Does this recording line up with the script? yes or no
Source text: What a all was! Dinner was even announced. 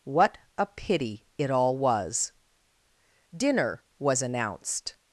no